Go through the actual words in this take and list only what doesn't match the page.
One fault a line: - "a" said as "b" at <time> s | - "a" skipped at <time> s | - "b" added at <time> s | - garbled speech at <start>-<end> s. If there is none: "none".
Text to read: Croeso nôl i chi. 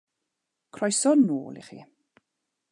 none